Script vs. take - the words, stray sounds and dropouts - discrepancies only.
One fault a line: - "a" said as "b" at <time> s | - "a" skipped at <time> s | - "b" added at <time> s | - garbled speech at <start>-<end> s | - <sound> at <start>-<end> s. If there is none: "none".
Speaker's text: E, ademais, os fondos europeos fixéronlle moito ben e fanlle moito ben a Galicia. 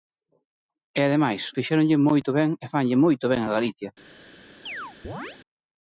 - "os fondos europeos" skipped at 1.4 s
- chirp at 4.7-5.4 s